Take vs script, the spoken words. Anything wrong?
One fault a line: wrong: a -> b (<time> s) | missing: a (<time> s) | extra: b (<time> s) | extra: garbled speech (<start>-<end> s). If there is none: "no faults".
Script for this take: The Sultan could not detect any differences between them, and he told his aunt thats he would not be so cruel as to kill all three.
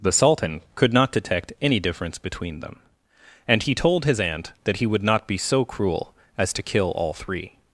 wrong: differences -> difference (1.8 s)
wrong: thats -> that (4.6 s)